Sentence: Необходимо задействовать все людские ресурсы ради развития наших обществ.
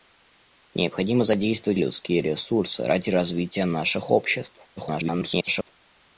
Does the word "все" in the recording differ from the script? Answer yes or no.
yes